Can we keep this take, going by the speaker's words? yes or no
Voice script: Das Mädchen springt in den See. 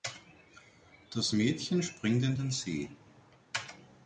yes